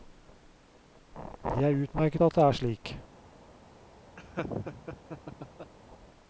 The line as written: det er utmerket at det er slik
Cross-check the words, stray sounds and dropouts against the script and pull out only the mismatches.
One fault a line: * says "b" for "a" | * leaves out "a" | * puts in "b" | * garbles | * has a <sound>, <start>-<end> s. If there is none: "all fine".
* has a laugh, 4.2-5.7 s